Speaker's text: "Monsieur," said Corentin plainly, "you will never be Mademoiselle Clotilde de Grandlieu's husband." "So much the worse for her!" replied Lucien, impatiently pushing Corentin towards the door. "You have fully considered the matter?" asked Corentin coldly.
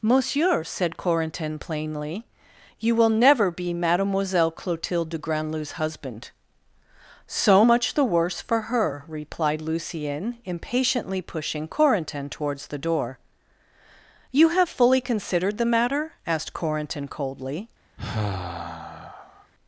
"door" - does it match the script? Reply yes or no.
yes